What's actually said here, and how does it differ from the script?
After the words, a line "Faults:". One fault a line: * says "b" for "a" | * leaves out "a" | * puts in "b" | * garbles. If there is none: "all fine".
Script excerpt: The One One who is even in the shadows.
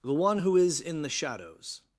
The One who is in the shadows.
Faults:
* leaves out "One"
* leaves out "even"